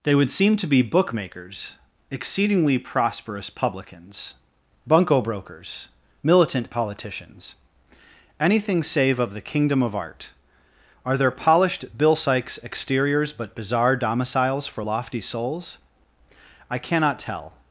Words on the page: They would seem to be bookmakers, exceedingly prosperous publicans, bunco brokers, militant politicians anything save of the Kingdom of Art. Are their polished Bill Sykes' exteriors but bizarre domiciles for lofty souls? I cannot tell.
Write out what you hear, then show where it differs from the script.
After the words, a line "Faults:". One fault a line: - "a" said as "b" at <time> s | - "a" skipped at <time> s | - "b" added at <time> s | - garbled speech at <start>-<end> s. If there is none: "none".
They would seem to be bookmakers, exceedingly prosperous publicans, bunco brokers, militant politicians anything save of the Kingdom of Art. Are their polished Bill Sykes' exteriors but bizarre domiciles for lofty souls? I cannot tell.
Faults:
none